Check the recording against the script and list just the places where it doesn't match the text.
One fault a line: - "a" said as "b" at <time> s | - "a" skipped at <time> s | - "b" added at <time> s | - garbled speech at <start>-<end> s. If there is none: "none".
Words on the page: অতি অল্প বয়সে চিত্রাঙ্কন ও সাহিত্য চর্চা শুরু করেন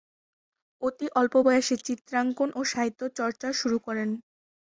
none